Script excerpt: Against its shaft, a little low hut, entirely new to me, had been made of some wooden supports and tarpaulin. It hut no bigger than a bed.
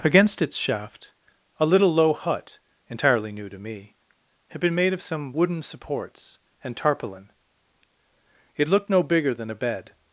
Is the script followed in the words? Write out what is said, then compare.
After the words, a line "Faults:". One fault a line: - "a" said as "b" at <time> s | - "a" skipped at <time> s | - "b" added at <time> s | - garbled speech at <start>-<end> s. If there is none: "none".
Against its shaft, a little low hut, entirely new to me, had been made of some wooden supports and tarpaulin. It looked no bigger than a bed.
Faults:
- "hut" said as "looked" at 8.7 s